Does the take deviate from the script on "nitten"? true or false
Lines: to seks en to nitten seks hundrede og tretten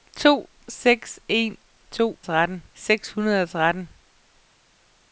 true